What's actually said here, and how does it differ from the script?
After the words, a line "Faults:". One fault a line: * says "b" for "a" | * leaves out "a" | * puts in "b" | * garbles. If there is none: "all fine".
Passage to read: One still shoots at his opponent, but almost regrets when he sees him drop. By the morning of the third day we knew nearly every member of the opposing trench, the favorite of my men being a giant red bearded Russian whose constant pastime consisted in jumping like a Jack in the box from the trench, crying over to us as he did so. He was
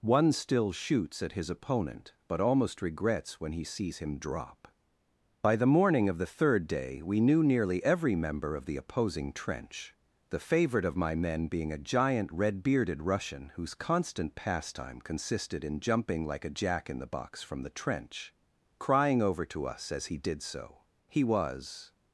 One still shoots at his opponent, but almost regrets when he sees him drop. By the morning of the third day we knew nearly every member of the opposing trench, the favorite of my men being a giant red bearded Russian whose constant pastime consisted in jumping like a Jack in the box from the trench, crying over to us as he did so. He was
Faults:
all fine